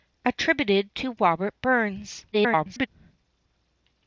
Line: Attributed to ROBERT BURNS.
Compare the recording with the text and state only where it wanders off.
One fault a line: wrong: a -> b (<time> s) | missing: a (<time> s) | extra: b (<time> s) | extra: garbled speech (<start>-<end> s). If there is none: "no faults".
extra: garbled speech (2.3-2.9 s)